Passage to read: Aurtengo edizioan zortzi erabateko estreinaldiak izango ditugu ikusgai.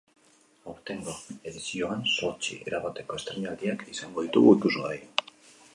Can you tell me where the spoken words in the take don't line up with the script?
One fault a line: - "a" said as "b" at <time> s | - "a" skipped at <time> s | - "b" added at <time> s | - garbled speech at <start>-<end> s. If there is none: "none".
none